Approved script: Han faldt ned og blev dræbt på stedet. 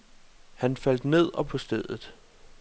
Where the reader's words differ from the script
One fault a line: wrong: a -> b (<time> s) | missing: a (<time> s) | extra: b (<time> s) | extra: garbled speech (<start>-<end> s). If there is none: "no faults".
missing: blev dræbt (1.5 s)